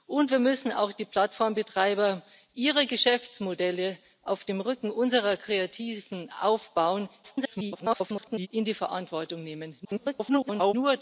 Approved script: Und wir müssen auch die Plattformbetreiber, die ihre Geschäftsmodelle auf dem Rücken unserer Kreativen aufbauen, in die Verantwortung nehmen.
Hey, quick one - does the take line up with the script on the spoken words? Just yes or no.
no